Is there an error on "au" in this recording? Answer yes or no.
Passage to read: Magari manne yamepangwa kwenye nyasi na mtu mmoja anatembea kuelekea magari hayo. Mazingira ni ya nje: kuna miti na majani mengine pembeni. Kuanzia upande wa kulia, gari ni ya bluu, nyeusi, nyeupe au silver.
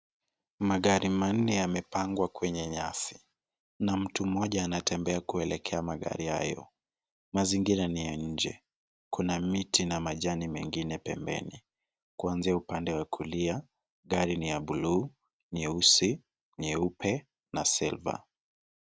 yes